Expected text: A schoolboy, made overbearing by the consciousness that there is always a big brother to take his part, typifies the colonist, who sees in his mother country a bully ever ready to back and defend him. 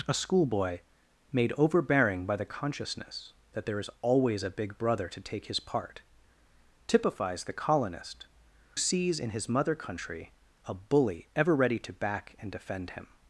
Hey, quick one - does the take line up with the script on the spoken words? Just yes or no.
no